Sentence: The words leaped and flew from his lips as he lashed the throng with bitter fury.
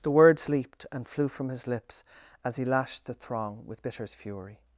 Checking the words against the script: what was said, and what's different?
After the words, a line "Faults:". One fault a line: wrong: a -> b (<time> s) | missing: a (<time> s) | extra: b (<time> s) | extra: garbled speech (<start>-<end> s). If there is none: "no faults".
The words leaped and flew from his lips as he lashed the throng with bitters fury.
Faults:
wrong: bitter -> bitters (3.8 s)